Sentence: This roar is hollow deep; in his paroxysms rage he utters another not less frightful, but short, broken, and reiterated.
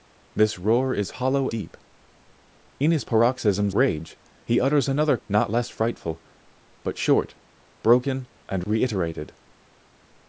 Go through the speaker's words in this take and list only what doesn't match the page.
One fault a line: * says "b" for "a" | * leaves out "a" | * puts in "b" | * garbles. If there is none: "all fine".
all fine